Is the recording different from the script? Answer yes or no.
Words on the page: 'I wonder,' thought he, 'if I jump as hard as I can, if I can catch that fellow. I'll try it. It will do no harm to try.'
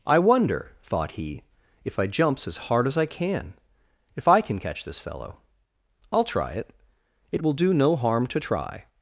yes